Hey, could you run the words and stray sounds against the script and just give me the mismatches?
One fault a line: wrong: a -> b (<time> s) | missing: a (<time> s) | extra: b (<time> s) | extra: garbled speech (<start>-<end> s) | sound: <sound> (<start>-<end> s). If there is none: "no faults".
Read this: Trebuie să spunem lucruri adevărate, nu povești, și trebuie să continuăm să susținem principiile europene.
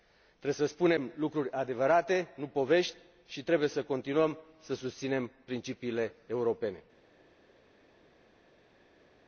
no faults